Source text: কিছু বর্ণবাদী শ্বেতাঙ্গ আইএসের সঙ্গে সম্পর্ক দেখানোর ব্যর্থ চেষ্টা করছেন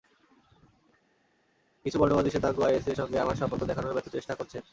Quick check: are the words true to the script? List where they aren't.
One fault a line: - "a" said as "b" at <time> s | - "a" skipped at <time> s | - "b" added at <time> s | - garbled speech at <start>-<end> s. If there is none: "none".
- "আমার" added at 3.2 s